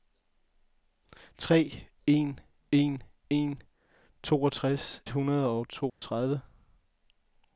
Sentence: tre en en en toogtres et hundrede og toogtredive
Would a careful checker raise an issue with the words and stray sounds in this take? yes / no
yes